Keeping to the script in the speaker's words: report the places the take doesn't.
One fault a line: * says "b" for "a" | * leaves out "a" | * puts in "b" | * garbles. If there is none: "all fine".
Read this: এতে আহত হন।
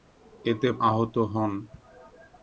all fine